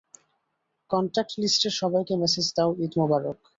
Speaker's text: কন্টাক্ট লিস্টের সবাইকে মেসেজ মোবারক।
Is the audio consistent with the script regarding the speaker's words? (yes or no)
no